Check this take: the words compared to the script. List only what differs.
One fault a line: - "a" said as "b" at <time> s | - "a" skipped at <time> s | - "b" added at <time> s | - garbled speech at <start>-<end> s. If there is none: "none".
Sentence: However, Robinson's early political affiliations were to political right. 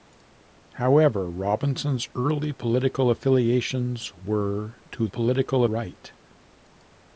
none